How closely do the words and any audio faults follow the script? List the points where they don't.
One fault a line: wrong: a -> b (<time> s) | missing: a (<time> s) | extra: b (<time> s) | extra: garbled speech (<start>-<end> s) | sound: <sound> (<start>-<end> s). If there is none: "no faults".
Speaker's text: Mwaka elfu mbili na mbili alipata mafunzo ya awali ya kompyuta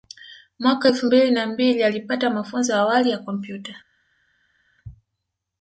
no faults